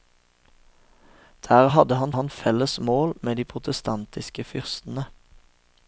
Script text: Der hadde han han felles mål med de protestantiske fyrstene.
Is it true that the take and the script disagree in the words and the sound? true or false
false